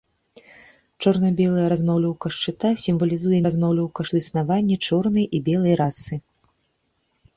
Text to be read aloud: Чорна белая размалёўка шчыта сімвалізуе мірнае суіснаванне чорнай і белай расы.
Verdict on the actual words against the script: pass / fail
fail